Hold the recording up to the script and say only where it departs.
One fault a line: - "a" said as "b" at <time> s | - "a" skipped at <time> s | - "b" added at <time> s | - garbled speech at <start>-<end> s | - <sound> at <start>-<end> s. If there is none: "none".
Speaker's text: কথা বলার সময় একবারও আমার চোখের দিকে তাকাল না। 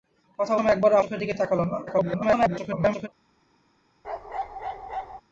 - "বলার" skipped at 0.5 s
- "আমার" skipped at 1.0 s
- garbled speech at 1.9-3.1 s
- bark at 4.0-5.2 s